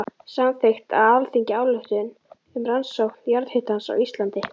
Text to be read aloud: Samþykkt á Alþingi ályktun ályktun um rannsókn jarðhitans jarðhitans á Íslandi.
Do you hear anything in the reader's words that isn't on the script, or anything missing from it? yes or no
yes